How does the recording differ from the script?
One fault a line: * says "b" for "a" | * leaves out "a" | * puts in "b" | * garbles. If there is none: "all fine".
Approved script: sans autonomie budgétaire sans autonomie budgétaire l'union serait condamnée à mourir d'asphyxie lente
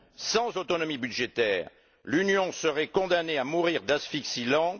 * leaves out "sans autonomie budgétaire"